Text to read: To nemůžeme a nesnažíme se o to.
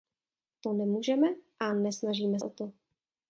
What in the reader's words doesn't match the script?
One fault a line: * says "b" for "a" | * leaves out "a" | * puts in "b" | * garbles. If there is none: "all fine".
* leaves out "se"